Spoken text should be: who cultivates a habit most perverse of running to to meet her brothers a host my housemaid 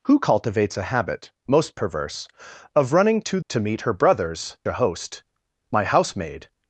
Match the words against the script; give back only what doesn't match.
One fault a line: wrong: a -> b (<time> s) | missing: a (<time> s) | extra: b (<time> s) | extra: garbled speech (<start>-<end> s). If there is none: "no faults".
no faults